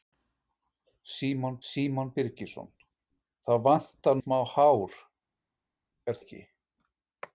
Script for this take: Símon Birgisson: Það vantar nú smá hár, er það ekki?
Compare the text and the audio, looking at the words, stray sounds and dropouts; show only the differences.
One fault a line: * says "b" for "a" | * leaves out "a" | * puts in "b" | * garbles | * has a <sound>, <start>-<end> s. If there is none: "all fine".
* puts in "símon"
* leaves out "nú"
* leaves out "það"